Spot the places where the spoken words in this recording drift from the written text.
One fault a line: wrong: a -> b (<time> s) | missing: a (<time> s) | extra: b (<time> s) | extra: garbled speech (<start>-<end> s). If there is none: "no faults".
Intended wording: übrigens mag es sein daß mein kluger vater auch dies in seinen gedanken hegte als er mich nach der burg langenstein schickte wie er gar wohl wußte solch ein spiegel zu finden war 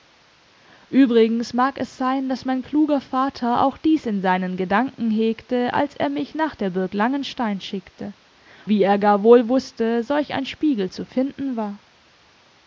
no faults